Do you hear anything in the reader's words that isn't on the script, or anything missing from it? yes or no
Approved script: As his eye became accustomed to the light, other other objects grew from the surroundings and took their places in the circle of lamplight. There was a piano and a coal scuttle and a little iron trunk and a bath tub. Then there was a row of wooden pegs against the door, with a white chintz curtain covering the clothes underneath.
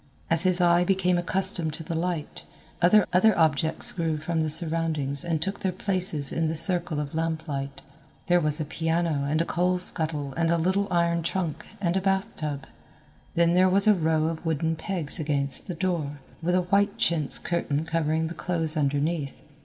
no